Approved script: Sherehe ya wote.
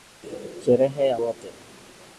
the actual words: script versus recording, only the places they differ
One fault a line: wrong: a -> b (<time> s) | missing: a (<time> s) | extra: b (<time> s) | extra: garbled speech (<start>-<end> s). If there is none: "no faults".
no faults